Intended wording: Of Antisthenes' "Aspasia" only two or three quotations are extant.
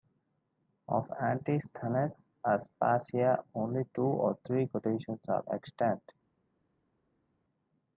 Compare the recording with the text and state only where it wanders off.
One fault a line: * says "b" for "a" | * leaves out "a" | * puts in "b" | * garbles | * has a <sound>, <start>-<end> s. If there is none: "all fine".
all fine